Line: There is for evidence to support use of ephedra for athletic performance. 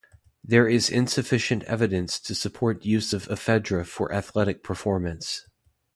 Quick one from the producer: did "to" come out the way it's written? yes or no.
yes